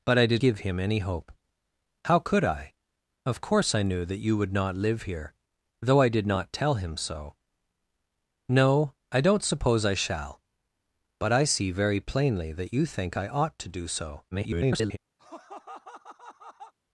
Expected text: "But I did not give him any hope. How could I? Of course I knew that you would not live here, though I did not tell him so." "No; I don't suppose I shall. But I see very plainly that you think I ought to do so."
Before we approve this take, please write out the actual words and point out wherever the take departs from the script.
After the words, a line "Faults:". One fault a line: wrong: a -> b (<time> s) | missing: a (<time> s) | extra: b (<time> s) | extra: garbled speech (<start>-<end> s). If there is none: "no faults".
"But I did give him any hope. How could I? Of course I knew that you would not live here, though I did not tell him so." "No; I don't suppose I shall. But I see very plainly that you think I ought to do so." [garbled]
Faults:
missing: not (0.4 s)
extra: garbled speech (14.3-15.0 s)